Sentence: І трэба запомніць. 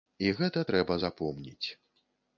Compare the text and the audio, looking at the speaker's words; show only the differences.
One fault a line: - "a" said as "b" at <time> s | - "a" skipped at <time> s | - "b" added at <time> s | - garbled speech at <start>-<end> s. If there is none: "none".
- "гэта" added at 0.4 s